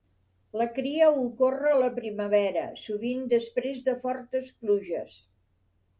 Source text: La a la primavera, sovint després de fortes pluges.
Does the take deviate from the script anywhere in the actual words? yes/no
yes